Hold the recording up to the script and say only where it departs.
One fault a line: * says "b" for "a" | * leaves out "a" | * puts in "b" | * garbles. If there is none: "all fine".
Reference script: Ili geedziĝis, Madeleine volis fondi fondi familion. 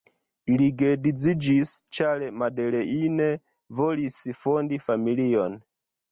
* puts in "ĉar"
* leaves out "fondi"